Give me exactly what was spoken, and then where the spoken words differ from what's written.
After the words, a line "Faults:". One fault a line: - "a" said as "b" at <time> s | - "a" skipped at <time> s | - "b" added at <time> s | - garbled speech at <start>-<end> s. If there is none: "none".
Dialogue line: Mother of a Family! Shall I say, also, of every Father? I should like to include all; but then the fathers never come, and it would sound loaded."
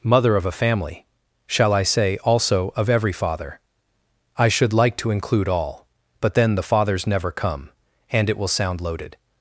Mother of a Family! Shall I say, also, of every Father? I should like to include all; but then the fathers never come, and it will sound loaded."
Faults:
- "would" said as "will" at 8.4 s